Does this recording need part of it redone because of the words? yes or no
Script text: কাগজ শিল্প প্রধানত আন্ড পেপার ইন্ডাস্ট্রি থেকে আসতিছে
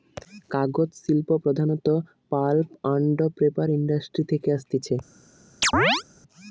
yes